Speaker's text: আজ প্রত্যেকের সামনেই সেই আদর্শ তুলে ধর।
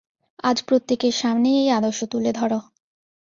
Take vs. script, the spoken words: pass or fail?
fail